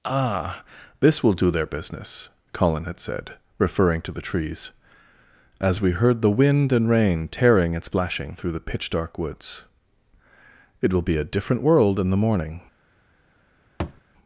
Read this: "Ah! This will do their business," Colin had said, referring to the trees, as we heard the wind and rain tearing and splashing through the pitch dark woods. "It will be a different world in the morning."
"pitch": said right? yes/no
yes